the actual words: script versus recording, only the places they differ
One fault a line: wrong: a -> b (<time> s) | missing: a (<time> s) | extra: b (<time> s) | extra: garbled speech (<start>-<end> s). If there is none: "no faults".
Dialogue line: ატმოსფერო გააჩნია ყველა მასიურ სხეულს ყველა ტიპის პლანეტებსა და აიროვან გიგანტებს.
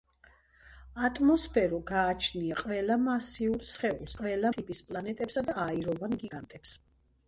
no faults